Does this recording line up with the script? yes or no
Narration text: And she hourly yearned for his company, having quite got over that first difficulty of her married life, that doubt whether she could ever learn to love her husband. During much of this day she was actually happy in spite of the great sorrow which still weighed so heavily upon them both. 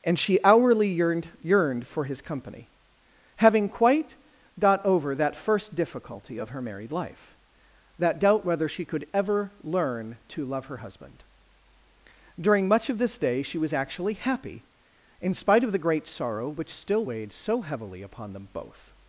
no